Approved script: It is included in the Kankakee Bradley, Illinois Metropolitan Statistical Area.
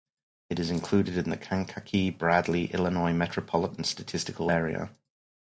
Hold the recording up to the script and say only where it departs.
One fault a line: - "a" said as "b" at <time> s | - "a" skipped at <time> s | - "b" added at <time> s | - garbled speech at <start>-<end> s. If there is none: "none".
none